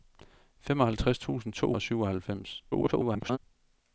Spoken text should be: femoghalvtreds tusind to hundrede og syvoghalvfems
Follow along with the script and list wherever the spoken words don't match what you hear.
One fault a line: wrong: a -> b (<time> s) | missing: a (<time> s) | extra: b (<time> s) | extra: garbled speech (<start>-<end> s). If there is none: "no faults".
missing: hundrede (1.7 s)
extra: garbled speech (2.7-3.4 s)